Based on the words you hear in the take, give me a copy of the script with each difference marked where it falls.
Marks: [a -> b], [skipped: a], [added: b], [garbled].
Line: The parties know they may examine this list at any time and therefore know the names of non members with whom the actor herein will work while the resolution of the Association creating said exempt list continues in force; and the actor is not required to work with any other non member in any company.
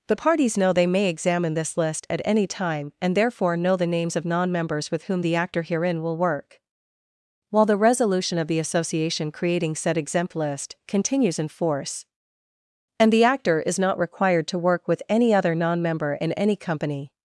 The parties know they may examine this list at any time and therefore know the names of non members with whom the actor herein will work while the resolution of the Association creating said exempt list continues in force; and the actor is not required to work with any other non member in any company.